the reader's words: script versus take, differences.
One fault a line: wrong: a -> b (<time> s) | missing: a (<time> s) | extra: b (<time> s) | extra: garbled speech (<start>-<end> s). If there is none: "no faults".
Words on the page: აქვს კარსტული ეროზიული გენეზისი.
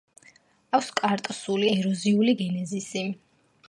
no faults